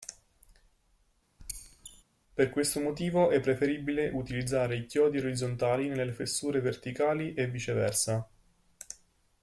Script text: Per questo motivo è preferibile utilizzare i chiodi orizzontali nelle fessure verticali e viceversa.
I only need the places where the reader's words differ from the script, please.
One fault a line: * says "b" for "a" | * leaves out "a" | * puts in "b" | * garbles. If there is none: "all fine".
all fine